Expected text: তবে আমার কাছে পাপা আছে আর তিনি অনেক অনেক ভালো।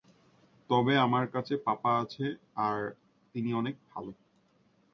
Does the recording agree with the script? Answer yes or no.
no